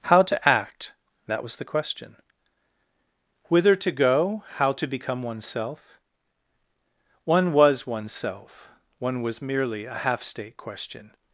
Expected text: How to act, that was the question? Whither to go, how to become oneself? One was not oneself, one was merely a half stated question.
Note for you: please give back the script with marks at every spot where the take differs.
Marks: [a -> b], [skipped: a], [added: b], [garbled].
How to act, that was the question? Whither to go, how to become oneself? One was [skipped: not] oneself, one was merely a half [stated -> state] question.